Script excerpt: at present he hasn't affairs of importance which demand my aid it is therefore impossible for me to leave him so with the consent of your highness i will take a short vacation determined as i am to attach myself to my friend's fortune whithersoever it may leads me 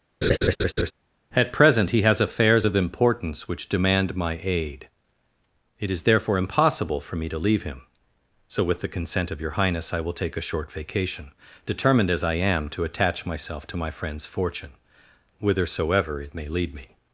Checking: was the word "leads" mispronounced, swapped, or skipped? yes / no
yes